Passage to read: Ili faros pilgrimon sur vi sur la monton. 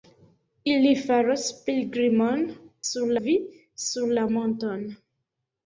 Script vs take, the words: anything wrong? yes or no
no